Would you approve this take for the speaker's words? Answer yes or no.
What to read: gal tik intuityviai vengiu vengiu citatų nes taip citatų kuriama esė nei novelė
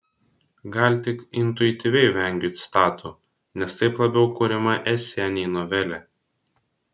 no